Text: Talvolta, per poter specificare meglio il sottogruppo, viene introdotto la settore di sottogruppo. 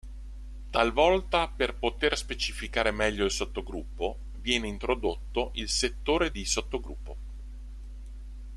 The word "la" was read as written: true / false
false